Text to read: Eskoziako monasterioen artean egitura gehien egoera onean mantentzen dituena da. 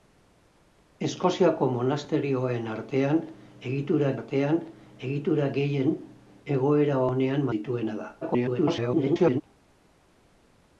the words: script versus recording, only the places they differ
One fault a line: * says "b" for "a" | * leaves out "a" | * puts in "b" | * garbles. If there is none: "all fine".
* puts in "artean egitura"
* leaves out "mantentzen"
* garbles